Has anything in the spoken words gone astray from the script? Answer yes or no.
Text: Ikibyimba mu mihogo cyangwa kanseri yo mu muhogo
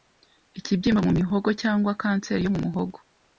no